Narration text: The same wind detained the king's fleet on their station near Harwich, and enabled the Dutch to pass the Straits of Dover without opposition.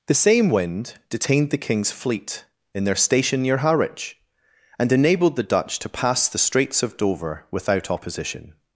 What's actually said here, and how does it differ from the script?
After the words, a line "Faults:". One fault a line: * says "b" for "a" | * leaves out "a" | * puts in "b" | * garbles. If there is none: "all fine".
The same wind detained the king's fleet in their station near Harwich, and enabled the Dutch to pass the Straits of Dover without opposition.
Faults:
* says "in" for "on"